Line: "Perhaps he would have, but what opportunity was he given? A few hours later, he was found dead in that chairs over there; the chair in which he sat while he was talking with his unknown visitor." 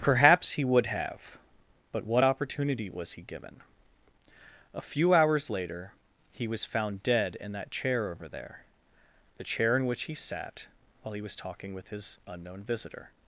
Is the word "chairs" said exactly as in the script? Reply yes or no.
no